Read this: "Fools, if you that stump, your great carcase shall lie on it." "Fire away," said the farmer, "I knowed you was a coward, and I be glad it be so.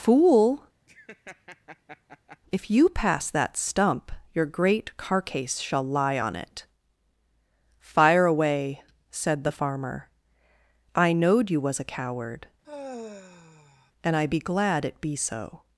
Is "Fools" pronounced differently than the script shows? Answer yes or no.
yes